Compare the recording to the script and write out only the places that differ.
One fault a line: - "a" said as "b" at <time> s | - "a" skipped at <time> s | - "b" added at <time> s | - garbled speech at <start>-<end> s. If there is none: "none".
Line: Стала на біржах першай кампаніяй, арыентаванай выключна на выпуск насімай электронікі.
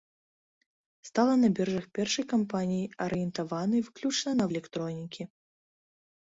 - "выпуск насімай" skipped at 4.4 s